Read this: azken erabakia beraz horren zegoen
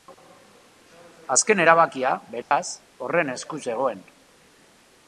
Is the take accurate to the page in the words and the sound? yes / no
no